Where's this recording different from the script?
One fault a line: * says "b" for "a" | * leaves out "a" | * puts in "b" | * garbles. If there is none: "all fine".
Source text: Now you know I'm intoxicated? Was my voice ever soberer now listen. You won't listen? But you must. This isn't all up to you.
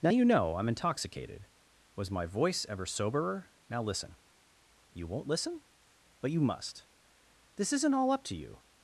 all fine